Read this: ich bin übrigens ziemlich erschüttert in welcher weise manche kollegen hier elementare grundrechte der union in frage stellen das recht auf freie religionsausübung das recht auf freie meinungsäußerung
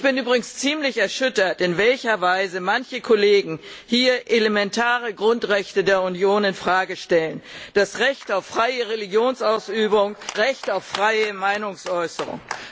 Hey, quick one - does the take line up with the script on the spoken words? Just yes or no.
no